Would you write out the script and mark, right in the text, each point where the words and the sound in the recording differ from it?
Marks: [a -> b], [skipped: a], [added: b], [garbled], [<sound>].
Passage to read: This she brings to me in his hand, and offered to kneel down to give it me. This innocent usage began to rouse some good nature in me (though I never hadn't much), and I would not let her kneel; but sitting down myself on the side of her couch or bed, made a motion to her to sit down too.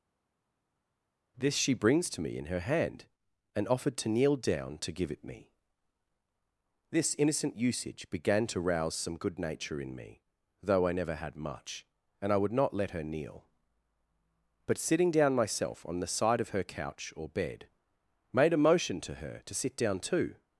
This she brings to me in [his -> her] hand, and offered to kneel down to give it me. This innocent usage began to rouse some good nature in me (though I never [hadn't -> had] much), and I would not let her kneel; but sitting down myself on the side of her couch or bed, made a motion to her to sit down too.